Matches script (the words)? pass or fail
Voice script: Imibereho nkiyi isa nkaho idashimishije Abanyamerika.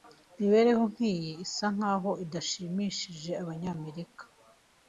pass